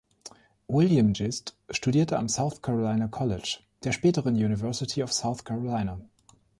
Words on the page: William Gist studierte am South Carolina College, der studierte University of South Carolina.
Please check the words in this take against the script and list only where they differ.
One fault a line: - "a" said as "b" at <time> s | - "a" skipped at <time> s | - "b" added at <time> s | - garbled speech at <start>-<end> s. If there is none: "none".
- "studierte" said as "späteren" at 3.9 s